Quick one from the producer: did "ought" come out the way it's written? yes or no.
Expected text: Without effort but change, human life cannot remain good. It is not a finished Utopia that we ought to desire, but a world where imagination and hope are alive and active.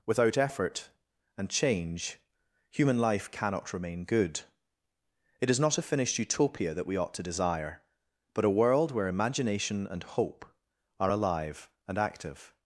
yes